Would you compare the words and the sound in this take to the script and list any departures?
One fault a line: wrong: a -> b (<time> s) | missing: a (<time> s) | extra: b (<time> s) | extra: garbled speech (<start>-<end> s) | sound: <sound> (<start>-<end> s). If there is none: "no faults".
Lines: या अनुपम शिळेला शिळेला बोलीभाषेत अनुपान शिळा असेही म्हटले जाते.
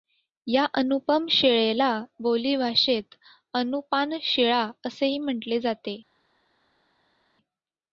missing: शिळेला (1.9 s)